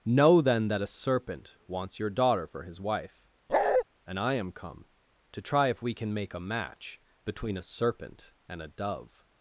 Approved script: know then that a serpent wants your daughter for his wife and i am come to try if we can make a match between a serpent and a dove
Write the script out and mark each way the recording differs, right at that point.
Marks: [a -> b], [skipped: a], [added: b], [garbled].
know then that a serpent wants your daughter for his wife and i am come to try if we can make a match between a serpent and a dove